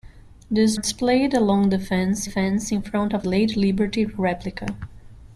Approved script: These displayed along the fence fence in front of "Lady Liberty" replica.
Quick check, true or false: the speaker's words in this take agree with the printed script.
true